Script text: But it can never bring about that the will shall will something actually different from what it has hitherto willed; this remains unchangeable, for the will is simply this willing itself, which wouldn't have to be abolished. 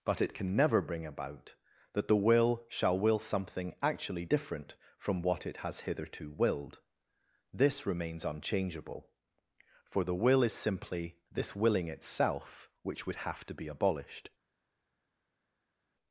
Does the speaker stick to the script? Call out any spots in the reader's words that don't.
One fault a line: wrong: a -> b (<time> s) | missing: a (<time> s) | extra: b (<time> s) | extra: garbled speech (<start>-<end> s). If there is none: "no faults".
wrong: wouldn't -> would (13.1 s)